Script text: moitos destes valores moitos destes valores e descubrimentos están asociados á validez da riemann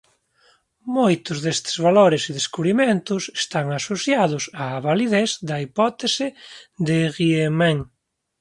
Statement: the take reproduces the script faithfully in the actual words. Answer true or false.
false